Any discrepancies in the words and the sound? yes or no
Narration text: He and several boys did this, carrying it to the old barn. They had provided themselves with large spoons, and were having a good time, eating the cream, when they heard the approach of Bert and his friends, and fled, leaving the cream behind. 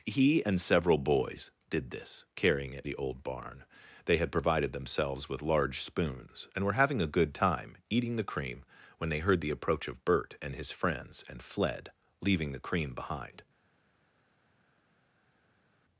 yes